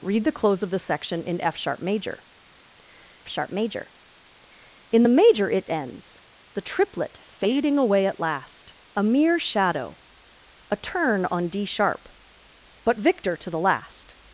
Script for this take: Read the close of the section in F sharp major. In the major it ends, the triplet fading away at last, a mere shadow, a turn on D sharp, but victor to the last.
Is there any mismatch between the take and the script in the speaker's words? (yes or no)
yes